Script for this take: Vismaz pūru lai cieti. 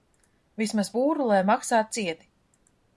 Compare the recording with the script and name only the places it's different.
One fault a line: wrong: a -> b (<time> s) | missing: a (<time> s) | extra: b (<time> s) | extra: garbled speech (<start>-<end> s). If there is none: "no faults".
extra: maksā (1.5 s)